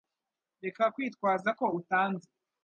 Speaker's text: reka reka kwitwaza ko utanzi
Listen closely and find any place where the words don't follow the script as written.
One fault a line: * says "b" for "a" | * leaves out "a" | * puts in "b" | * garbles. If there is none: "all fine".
* leaves out "reka"